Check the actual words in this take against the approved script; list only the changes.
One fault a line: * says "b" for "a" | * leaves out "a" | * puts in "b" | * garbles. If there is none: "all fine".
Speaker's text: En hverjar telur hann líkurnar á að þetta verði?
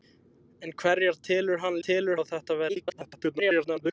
* says "telur" for "líkurnar"
* garbles